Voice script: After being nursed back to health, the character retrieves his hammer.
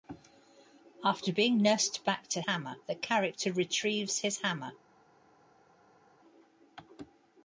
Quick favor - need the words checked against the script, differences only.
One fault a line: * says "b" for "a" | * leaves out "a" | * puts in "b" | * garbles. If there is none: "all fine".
* says "hammer" for "health"